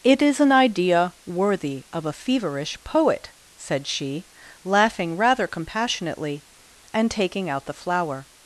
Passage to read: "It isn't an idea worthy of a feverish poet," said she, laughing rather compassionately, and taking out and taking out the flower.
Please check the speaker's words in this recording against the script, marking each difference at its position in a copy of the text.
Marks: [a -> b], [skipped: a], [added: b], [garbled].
"It [isn't -> is] an idea worthy of a feverish poet," said she, laughing rather compassionately, and taking out [skipped: and taking out] the flower.